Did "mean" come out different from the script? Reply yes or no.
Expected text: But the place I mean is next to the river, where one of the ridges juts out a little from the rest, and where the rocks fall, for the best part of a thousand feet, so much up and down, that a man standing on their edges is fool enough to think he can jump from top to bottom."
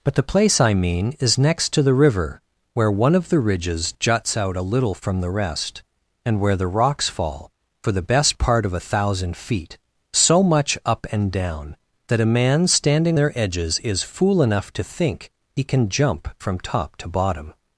no